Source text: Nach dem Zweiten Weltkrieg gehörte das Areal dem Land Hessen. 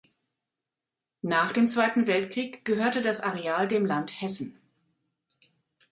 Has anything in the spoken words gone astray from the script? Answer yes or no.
no